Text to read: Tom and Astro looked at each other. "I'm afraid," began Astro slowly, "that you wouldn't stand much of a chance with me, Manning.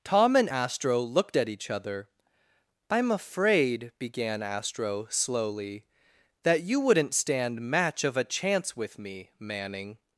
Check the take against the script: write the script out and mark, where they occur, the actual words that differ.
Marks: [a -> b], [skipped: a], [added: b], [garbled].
Tom and Astro looked at each other. "I'm afraid," began Astro slowly, "that you wouldn't stand [much -> match] of a chance with me, Manning.